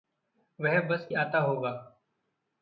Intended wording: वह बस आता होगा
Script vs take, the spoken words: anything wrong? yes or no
no